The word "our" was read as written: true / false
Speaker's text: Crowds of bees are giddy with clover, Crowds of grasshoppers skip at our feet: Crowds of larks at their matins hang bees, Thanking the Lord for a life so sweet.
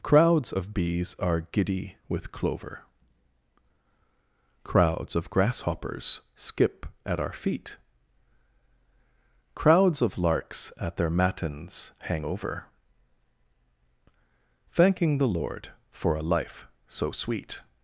true